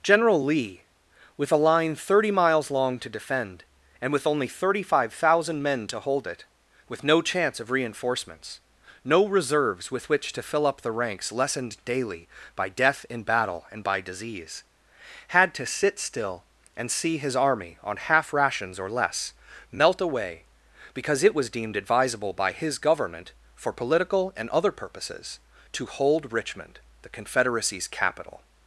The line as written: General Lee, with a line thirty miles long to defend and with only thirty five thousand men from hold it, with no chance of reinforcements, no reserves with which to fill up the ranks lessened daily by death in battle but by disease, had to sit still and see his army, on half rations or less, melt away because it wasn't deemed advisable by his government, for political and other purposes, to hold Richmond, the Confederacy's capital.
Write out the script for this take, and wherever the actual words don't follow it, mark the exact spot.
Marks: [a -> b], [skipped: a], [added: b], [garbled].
General Lee, with a line thirty miles long to defend and with only thirty five thousand men [from -> to] hold it, with no chance of reinforcements, no reserves with which to fill up the ranks lessened daily by death in battle [but -> and] by disease, had to sit still and see his army, on half rations or less, melt away because it [wasn't -> was] deemed advisable by his government, for political and other purposes, to hold Richmond, the Confederacy's capital.